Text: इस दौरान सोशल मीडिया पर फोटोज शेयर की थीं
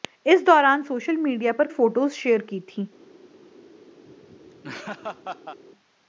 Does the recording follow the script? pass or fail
pass